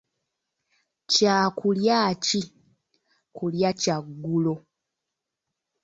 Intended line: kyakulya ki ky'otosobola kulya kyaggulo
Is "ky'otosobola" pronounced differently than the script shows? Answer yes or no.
yes